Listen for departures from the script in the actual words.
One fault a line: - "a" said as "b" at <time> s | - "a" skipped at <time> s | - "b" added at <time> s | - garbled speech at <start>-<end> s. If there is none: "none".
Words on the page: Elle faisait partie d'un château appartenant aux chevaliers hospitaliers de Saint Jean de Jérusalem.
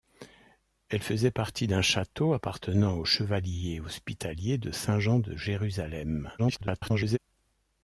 - garbled speech at 6.4-7.2 s